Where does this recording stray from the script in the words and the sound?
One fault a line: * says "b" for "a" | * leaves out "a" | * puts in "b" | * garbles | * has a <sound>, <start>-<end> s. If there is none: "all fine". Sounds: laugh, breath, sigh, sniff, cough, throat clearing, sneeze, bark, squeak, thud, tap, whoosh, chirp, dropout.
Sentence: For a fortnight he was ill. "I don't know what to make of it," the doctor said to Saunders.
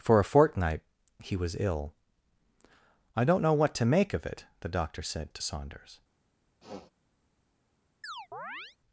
* has a sniff, 6.6-6.9 s
* has a chirp, 8.0-8.8 s